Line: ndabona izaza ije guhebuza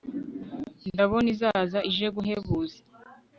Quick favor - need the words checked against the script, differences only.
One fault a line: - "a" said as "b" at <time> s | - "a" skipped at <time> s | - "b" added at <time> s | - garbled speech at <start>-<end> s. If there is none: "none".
none